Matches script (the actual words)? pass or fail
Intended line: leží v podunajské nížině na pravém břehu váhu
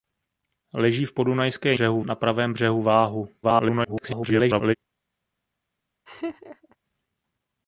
fail